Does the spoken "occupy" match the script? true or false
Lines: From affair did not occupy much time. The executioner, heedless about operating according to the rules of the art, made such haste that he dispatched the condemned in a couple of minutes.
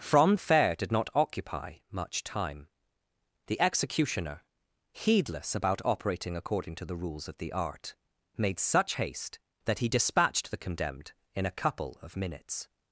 true